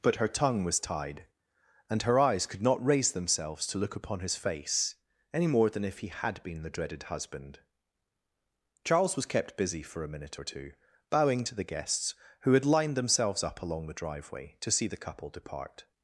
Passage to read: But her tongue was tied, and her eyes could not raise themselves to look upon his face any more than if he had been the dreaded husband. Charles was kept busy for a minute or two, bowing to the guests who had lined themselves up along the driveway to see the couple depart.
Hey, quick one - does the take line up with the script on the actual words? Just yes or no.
yes